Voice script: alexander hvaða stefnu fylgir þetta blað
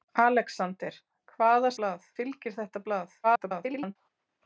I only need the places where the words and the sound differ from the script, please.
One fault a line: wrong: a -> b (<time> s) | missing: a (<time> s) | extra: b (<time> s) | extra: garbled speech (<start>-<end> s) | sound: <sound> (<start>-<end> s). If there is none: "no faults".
wrong: stefnu -> blað (1.8 s)
extra: garbled speech (3.2-4.0 s)